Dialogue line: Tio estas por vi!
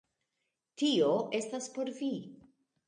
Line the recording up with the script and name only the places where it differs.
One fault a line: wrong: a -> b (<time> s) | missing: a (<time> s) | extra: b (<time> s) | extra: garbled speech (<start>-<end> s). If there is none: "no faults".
no faults